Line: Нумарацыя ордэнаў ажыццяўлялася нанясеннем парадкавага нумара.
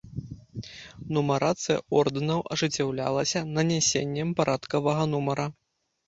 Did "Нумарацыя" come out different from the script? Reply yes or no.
no